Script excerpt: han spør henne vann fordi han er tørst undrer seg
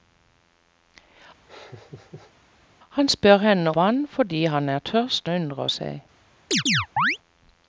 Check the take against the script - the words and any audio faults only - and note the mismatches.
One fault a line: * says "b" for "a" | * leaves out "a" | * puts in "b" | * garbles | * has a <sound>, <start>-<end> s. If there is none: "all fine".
* has a laugh, 1.5-2.3 s
* has a chirp, 6.5-7.2 s